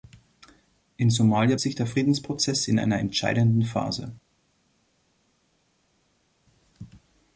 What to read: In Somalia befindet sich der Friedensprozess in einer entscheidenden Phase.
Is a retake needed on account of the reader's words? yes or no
yes